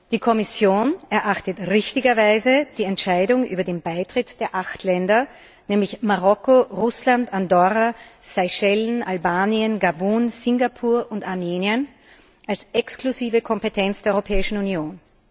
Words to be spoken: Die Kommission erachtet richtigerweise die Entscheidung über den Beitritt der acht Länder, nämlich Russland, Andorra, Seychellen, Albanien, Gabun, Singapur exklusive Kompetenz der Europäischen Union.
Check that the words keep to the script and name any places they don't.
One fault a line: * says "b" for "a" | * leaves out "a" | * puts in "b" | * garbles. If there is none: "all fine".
* puts in "Marokko"
* puts in "und Armenien als"